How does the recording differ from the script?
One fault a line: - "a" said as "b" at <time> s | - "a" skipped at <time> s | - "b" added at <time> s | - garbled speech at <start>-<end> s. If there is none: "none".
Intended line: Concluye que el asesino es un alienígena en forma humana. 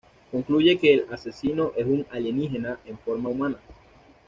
none